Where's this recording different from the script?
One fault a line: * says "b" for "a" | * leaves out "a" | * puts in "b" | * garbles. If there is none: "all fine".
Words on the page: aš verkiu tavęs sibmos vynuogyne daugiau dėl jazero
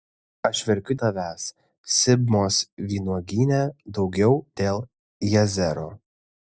all fine